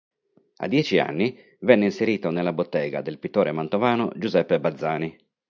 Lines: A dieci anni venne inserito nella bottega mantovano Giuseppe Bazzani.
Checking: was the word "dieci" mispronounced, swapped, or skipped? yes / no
no